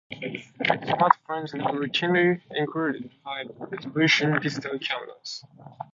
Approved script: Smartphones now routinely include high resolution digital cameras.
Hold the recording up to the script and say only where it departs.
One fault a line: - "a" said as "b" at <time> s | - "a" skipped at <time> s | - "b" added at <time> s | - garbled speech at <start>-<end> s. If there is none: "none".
none